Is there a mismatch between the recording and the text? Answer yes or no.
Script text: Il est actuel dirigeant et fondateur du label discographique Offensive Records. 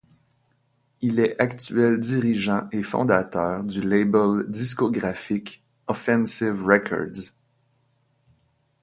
no